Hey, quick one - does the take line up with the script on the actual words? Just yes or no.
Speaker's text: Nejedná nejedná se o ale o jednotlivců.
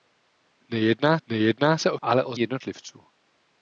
yes